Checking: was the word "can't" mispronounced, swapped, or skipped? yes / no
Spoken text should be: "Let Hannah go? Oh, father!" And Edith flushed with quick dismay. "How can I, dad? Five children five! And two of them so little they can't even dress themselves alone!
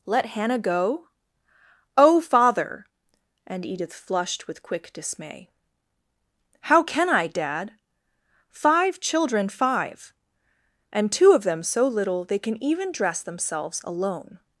yes